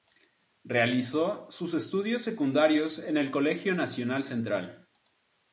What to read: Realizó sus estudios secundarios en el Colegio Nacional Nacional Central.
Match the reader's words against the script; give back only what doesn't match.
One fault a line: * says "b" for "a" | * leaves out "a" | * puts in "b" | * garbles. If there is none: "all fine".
* leaves out "Nacional"